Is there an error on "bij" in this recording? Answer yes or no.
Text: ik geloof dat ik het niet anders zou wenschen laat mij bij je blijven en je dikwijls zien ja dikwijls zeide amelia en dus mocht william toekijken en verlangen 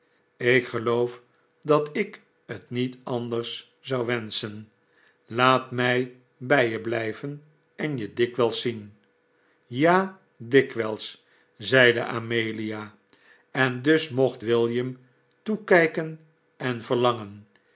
no